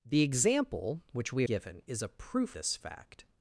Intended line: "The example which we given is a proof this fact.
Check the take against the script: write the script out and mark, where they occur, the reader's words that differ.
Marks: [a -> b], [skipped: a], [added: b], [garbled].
"The example which we given is a proof this fact.